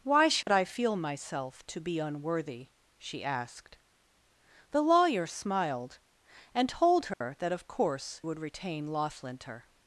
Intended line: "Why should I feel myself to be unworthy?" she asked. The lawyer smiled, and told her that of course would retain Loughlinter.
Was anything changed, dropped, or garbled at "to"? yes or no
no